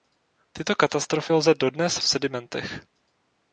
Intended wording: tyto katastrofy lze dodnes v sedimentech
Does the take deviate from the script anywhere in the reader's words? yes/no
no